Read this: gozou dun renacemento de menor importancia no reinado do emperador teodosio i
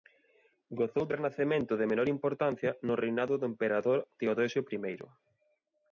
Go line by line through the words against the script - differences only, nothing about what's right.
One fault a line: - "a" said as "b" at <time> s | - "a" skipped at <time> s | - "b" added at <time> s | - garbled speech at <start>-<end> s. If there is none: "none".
- "dun" skipped at 1.1 s